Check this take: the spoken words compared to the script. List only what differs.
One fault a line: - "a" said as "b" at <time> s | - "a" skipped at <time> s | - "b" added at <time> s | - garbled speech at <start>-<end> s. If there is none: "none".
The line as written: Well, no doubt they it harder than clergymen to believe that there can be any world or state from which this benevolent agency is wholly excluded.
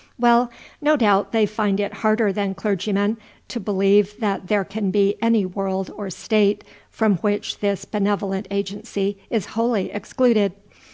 - "find" added at 1.4 s